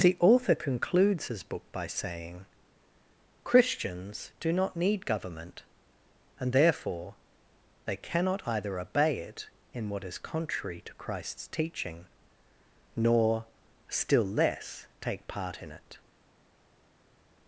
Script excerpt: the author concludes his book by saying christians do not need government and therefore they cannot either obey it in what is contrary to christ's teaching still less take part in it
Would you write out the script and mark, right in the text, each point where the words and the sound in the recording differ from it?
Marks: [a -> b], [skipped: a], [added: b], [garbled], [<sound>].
the author concludes his book by saying christians do not need government and therefore they cannot either obey it in what is contrary to christ's teaching [added: nor] still less take part in it